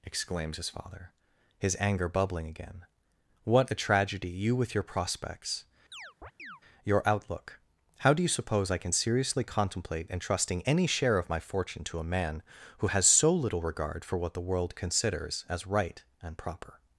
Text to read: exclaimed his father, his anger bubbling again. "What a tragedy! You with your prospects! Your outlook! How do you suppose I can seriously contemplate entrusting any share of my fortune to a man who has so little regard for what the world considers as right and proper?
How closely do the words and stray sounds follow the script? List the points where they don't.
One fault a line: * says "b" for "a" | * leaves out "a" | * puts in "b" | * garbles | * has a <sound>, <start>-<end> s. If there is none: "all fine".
* says "exclaims" for "exclaimed"
* has a chirp, 5.9-6.6 s